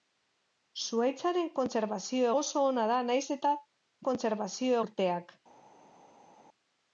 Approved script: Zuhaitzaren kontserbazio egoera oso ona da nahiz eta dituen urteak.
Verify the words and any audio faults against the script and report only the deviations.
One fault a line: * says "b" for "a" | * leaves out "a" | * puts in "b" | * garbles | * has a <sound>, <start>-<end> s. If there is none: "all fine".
* leaves out "egoera"
* says "kontserbazio" for "dituen"